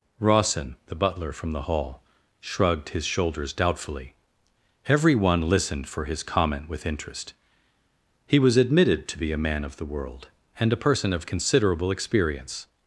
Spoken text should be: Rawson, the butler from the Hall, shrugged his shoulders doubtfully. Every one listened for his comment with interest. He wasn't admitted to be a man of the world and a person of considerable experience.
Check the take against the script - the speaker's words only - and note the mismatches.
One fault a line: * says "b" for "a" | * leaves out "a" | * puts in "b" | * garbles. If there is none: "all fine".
* says "was" for "wasn't"